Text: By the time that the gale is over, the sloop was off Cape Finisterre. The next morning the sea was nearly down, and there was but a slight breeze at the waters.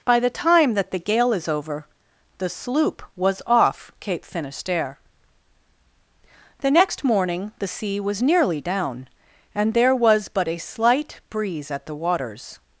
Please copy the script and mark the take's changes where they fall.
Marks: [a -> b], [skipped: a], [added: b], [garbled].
By the time that the gale is over, the sloop was off Cape Finisterre. The next morning the sea was nearly down, and there was but a slight breeze at the waters.